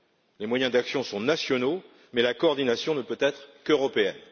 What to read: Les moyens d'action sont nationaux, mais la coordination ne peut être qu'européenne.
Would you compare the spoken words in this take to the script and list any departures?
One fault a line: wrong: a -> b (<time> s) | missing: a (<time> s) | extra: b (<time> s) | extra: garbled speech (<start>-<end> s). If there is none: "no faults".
no faults